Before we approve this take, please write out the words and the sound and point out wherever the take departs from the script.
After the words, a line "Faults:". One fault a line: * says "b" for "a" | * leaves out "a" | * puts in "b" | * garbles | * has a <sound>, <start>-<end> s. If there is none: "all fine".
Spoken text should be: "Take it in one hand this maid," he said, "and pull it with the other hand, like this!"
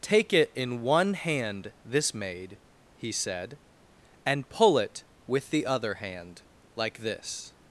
"Take it in one hand this maid," he said, "and pull it with the other hand, like this!"
Faults:
all fine